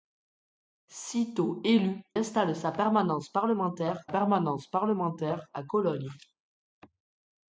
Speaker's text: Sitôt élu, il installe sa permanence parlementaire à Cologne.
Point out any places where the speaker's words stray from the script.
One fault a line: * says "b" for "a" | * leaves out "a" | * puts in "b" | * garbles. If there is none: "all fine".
* leaves out "il"
* puts in "permanence parlementaire"